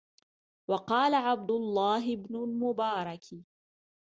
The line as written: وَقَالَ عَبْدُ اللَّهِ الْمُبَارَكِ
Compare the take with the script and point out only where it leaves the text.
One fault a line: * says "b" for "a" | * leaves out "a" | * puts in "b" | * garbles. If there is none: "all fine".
* puts in "بْنُ"